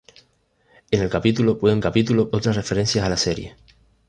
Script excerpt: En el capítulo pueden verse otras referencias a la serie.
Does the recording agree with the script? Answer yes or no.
no